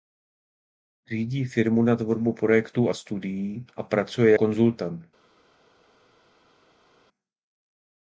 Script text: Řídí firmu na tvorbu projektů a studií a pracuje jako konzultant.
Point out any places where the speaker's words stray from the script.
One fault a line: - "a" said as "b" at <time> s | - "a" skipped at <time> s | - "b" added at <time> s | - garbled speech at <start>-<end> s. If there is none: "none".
- "jako" skipped at 4.3 s